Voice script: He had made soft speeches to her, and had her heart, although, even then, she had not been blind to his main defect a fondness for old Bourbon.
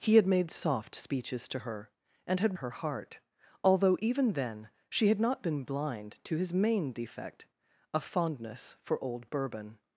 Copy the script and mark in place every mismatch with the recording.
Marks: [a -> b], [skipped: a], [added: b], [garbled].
He had made soft speeches to her, and had her heart, although, even then, she had not been blind to his main defect a fondness for old Bourbon.